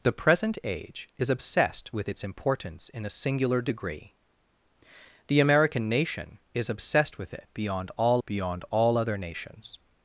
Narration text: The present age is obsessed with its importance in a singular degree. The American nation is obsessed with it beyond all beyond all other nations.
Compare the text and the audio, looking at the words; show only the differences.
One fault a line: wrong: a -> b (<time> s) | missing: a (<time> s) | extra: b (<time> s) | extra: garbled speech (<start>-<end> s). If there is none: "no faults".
no faults